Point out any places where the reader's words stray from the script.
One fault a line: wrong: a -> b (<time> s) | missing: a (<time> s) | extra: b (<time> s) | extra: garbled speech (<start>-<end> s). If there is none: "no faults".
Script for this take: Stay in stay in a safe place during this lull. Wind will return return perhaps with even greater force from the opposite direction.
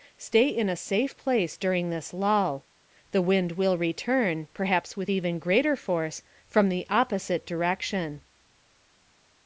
missing: stay in (0.7 s)
extra: The (3.1 s)
missing: return (4.5 s)